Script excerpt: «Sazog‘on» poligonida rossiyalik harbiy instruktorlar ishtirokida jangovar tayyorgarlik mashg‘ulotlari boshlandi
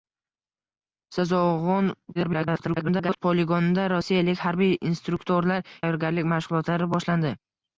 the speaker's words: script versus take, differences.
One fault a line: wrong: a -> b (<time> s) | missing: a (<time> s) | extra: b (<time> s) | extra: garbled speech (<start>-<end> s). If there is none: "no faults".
extra: garbled speech (2.1-3.2 s)
missing: ishtirokida jangovar (5.7 s)